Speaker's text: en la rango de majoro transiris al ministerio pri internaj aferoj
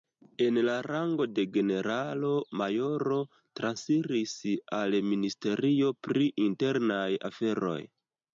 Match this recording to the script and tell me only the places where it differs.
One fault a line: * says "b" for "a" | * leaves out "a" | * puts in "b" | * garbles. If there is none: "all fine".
* puts in "generalo"